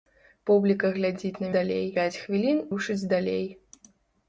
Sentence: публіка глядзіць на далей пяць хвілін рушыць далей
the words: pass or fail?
pass